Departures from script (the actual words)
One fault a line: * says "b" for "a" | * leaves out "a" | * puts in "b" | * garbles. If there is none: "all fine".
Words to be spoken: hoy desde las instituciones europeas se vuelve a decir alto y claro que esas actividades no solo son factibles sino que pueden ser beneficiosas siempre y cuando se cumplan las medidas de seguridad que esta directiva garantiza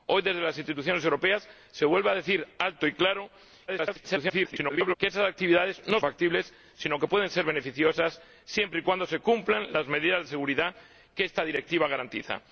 * garbles
* leaves out "solo son"